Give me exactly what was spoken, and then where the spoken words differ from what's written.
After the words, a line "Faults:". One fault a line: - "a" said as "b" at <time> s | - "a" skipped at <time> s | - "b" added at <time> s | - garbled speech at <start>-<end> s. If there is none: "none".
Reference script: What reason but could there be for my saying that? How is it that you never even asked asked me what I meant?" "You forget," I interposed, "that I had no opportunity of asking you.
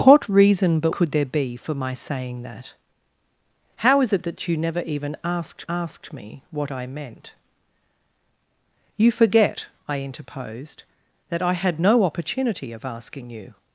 What reason but could there be for my saying that? How is it that you never even asked asked me what I meant?" "You forget," I interposed, "that I had no opportunity of asking you.
Faults:
none